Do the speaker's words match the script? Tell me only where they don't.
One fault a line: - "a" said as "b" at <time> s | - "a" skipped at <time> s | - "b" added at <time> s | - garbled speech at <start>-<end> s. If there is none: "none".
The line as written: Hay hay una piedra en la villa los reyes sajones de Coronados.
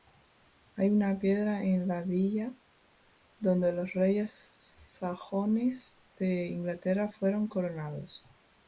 - "hay" skipped at 0.9 s
- "donde" added at 3.4 s
- "Inglaterra fueron" added at 6.5 s